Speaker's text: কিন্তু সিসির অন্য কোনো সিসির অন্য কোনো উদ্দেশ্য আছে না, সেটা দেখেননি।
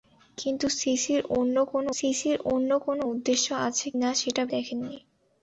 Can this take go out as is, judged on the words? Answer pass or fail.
pass